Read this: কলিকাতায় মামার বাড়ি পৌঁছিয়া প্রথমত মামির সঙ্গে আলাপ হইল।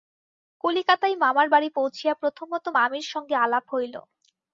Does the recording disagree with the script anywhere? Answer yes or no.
no